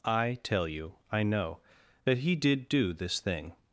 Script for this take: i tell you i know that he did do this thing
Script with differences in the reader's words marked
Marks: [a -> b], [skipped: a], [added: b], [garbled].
i tell you i know that he did do this thing